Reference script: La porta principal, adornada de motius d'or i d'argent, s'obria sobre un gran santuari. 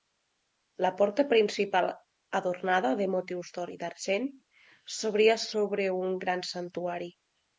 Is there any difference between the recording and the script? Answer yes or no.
no